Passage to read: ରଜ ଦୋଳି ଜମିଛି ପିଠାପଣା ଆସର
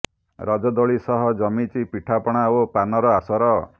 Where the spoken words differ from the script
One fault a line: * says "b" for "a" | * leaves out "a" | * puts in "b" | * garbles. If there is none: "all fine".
* puts in "ସହ"
* puts in "ଓ ପାନର"